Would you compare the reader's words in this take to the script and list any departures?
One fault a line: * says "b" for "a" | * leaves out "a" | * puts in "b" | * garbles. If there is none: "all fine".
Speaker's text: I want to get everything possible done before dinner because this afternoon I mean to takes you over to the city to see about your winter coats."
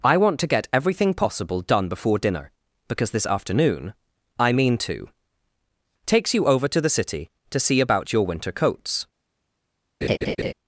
all fine